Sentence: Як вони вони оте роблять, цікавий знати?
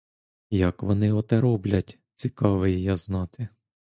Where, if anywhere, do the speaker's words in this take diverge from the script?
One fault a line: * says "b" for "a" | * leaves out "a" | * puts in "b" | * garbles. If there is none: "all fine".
* leaves out "вони"
* puts in "я"